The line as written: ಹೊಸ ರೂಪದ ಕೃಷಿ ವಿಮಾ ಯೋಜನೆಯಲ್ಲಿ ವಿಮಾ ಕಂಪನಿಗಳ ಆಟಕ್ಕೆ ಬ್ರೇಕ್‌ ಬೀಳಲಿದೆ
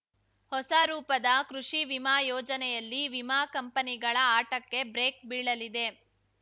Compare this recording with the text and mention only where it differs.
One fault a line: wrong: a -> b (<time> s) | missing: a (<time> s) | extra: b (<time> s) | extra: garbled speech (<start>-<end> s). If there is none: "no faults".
no faults